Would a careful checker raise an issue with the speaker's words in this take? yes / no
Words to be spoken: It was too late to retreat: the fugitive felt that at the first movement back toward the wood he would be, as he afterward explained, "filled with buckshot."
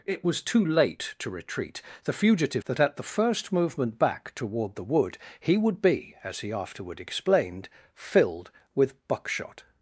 yes